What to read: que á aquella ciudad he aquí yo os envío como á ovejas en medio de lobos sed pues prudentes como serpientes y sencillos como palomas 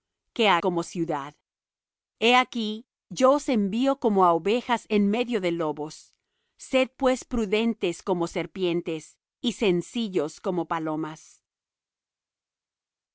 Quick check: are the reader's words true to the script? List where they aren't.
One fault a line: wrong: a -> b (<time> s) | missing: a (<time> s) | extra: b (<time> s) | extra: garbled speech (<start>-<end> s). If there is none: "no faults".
wrong: aquella -> como (0.6 s)